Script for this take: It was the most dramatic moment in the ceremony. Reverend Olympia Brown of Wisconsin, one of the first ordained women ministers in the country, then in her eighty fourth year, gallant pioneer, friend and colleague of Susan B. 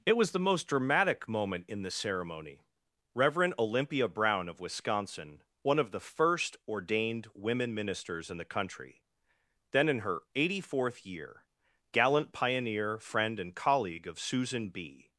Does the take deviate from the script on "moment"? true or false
false